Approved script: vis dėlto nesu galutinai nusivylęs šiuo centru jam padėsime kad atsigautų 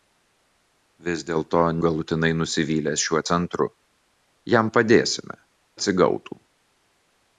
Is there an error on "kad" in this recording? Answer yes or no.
yes